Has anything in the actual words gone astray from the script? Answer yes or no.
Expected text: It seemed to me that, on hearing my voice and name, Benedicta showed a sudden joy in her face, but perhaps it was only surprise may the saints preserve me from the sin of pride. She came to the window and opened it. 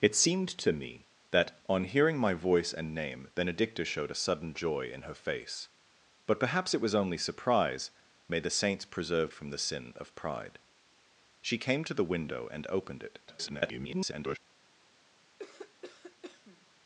yes